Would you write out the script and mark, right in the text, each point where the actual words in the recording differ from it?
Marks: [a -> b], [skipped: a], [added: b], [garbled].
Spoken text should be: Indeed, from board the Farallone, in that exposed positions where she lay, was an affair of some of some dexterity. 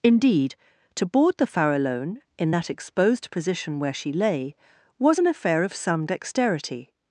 Indeed, [from -> to] board the Farallone, in that exposed [positions -> position] where she lay, was an affair of some [skipped: of some] dexterity.